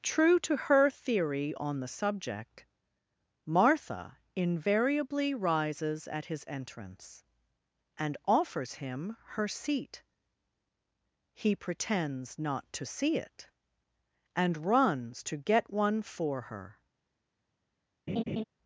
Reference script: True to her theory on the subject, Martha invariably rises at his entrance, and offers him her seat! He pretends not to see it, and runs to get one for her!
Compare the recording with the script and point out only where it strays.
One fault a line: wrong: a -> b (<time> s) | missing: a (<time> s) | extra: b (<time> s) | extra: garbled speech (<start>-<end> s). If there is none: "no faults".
no faults